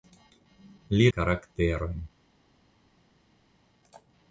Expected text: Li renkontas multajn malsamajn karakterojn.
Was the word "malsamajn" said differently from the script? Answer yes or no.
yes